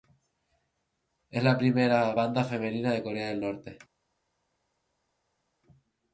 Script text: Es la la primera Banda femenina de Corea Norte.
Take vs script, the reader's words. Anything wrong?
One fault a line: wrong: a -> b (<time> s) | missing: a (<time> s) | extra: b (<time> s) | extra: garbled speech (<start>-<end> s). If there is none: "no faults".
missing: la (1.6 s)
extra: del (3.3 s)